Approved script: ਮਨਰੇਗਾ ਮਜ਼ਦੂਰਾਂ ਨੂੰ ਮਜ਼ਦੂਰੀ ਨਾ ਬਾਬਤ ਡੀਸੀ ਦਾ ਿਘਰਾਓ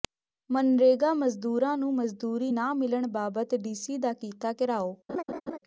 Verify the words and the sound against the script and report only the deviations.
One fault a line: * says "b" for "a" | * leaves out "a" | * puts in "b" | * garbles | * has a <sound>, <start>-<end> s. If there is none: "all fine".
* puts in "ਮਿਲਣ"
* puts in "ਕੀਤਾ"
* has a laugh, 5.1-5.6 s